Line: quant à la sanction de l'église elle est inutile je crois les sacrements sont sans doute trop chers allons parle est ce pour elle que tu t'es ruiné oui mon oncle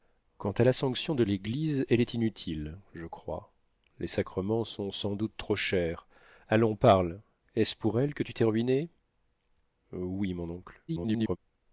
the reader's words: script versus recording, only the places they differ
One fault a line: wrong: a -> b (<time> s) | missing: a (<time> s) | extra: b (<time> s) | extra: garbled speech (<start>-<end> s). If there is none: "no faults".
extra: garbled speech (10.9-11.4 s)